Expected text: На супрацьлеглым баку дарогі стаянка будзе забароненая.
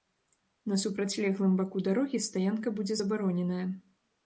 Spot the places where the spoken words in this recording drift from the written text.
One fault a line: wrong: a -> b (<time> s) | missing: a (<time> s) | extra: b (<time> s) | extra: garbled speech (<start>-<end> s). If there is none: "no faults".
no faults